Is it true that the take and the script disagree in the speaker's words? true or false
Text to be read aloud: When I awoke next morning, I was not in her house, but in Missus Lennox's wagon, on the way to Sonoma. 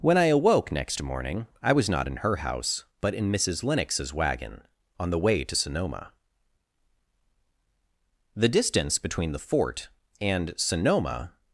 true